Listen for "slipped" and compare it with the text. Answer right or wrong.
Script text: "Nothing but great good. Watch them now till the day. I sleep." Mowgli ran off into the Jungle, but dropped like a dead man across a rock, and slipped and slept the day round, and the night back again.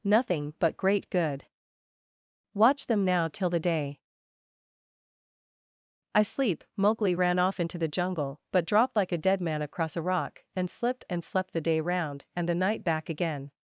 right